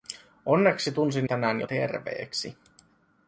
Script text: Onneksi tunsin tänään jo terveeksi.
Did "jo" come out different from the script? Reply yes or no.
no